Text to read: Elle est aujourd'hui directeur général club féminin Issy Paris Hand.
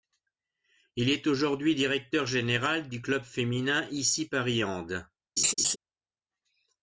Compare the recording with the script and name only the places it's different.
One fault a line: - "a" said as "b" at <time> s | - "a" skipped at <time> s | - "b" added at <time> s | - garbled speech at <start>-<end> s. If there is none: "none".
- "Elle" said as "Il" at 0.9 s
- "du" added at 2.9 s